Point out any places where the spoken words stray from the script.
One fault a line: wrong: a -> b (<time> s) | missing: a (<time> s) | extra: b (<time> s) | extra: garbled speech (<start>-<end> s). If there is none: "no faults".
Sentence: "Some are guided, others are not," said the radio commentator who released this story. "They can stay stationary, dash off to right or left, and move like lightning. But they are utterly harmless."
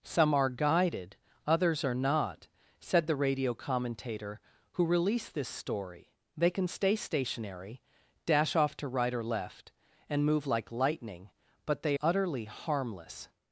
missing: are (12.0 s)